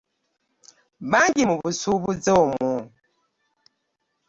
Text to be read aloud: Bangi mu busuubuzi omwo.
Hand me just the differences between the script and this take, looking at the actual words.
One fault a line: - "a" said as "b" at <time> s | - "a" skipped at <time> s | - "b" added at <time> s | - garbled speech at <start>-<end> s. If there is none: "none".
none